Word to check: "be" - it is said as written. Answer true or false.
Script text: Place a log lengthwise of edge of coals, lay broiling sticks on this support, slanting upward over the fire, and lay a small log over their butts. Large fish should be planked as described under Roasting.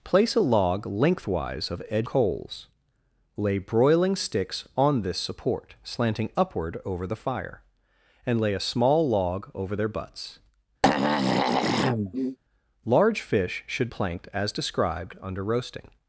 false